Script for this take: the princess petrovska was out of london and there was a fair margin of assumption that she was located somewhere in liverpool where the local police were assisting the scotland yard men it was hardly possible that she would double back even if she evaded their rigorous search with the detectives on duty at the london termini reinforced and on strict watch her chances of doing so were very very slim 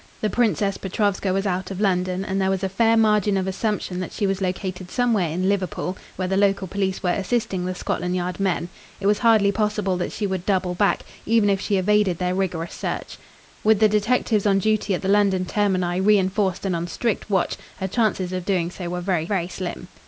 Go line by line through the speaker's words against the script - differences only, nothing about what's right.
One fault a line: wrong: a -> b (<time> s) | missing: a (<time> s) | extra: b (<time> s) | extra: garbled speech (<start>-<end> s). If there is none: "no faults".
no faults